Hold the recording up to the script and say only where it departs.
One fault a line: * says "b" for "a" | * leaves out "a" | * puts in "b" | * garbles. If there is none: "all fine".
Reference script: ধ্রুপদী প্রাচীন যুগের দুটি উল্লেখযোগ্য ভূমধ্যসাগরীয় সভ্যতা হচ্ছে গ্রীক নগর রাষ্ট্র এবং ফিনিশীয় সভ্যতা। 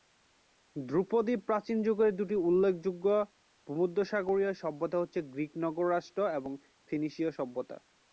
all fine